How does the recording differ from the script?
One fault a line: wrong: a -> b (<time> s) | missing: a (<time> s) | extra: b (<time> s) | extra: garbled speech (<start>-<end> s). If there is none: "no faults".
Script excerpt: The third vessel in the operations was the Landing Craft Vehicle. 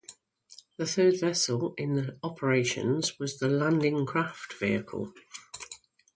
no faults